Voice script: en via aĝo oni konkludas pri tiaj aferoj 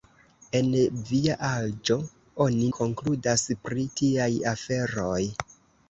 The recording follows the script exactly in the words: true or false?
true